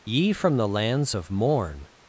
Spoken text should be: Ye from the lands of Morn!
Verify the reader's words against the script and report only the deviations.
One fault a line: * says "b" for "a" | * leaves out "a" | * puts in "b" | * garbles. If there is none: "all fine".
all fine